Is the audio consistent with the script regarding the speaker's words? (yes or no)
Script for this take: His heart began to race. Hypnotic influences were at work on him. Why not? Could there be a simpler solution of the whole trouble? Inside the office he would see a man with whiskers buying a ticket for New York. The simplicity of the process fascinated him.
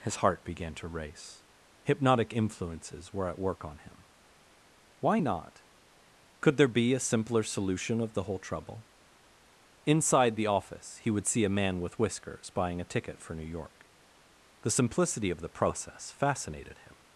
yes